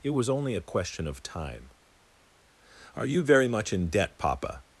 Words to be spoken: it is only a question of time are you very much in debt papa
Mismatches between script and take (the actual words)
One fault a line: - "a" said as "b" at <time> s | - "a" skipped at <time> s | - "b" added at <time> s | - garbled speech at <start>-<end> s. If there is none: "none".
- "is" said as "was" at 0.1 s